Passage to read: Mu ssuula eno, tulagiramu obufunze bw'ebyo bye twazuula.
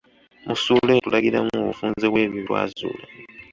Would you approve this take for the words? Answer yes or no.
no